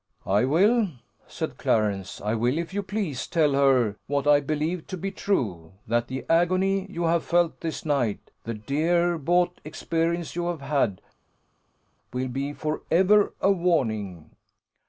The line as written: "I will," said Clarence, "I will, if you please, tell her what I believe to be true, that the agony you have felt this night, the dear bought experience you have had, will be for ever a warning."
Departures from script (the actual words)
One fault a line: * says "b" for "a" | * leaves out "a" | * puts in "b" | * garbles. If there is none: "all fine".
all fine